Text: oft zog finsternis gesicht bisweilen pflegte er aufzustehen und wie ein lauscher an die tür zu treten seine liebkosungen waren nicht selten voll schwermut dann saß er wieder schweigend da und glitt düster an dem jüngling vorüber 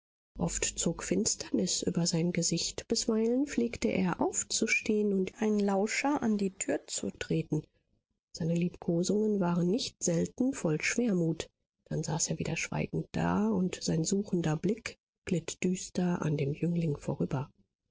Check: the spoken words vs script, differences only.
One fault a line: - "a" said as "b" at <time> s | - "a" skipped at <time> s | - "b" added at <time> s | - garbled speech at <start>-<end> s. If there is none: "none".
- "über sein" added at 1.8 s
- "sein suchender blick" added at 13.8 s